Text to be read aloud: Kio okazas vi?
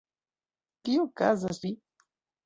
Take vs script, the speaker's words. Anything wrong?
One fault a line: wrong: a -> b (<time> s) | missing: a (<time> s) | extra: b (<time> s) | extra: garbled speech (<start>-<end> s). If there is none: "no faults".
no faults